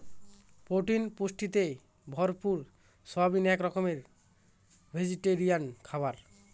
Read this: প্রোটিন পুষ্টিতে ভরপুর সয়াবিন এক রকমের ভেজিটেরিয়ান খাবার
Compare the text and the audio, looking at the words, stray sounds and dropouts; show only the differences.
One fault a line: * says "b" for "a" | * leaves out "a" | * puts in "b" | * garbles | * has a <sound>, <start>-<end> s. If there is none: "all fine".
all fine